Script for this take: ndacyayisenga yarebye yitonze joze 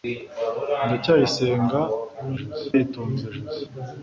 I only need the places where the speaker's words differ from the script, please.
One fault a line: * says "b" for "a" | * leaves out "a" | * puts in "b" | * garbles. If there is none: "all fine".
* says "joze" for "yarebye"